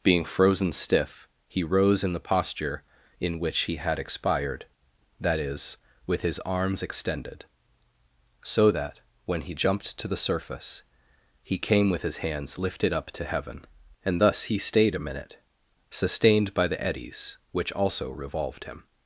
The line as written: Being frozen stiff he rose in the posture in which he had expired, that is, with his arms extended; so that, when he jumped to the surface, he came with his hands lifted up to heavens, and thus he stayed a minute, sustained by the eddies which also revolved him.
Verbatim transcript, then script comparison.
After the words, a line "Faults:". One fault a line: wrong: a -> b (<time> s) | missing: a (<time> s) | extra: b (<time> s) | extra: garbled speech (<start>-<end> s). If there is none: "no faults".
Being frozen stiff he rose in the posture in which he had expired, that is, with his arms extended; so that, when he jumped to the surface, he came with his hands lifted up to heaven, and thus he stayed a minute, sustained by the eddies which also revolved him.
Faults:
wrong: heavens -> heaven (13.2 s)